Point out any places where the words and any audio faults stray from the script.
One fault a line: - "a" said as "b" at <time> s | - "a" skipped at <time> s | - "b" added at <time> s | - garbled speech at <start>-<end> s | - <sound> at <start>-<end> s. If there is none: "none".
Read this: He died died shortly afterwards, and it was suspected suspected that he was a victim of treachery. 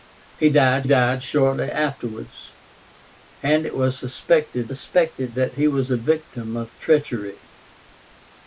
none